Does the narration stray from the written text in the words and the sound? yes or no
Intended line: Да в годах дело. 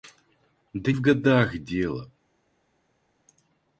no